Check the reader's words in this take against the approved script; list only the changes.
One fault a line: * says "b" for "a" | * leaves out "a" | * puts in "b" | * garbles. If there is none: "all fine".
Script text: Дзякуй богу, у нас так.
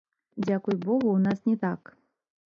* puts in "не"